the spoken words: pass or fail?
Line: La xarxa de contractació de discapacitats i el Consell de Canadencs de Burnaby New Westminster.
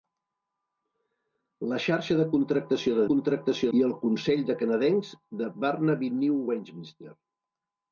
fail